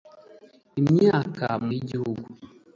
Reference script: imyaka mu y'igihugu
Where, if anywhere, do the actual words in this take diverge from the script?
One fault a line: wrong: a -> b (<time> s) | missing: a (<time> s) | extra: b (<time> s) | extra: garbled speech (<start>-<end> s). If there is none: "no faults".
no faults